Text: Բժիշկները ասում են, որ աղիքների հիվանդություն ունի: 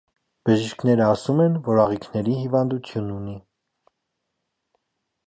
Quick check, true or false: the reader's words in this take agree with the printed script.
true